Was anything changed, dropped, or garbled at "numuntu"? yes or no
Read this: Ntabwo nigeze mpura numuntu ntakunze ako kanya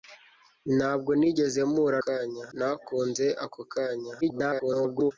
yes